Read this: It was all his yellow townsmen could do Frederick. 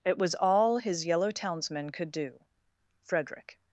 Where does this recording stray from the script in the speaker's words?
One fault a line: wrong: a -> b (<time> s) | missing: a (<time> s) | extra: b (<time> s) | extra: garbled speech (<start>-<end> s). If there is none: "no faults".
no faults